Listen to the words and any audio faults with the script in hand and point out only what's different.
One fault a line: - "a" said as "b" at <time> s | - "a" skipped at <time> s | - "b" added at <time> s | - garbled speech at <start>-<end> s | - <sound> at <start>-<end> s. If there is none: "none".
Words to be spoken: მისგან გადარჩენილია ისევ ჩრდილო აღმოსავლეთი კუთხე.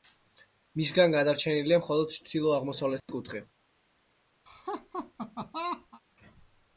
- "ისევ" said as "მხოლოდ" at 1.8 s
- dropout at 3.0-3.1 s
- laugh at 4.5-6.0 s